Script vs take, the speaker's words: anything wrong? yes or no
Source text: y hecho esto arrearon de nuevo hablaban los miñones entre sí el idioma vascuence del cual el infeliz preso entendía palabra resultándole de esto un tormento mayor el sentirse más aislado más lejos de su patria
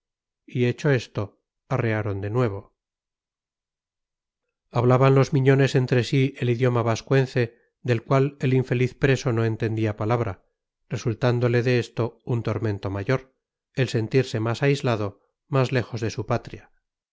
yes